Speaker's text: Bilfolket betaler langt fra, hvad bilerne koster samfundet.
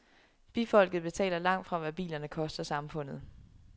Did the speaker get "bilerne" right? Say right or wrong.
right